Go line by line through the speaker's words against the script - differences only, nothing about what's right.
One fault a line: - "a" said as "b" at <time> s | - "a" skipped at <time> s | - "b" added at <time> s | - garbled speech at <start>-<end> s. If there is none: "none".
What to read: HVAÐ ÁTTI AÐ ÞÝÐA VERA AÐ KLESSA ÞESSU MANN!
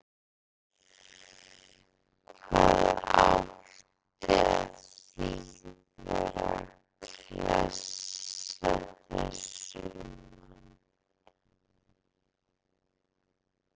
none